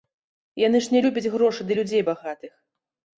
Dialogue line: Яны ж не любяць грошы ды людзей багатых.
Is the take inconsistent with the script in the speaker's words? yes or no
no